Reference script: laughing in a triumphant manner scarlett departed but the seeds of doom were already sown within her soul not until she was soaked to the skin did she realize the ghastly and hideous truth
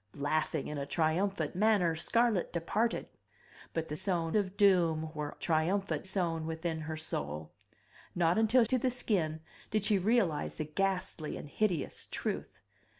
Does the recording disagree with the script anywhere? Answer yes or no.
yes